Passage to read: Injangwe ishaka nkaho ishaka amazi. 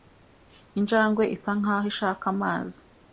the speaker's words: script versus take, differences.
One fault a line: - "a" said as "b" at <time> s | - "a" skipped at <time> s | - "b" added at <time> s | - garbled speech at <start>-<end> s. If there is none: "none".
- "ishaka" said as "isa" at 1.4 s